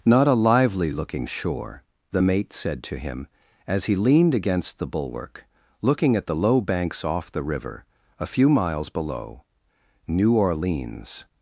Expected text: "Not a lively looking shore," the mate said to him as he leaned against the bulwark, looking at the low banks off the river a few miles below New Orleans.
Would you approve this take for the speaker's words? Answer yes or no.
yes